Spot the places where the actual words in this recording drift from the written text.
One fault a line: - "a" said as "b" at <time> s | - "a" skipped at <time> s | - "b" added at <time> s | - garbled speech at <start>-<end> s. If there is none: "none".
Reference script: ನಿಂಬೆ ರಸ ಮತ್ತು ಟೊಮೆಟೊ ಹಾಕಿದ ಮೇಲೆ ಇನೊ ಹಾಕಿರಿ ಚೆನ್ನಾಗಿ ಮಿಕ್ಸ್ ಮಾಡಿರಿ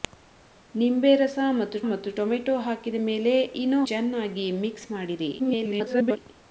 - "ಮತ್ತು" added at 1.9 s
- "ಹಾಕಿರಿ" skipped at 3.8 s
- garbled speech at 5.4-6.2 s